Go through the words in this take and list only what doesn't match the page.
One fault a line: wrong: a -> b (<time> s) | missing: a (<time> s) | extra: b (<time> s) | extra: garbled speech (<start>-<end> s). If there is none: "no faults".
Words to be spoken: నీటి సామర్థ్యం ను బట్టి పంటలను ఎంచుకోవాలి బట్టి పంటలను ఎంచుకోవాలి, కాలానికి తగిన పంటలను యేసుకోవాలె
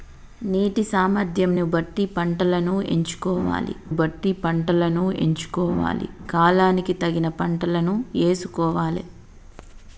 no faults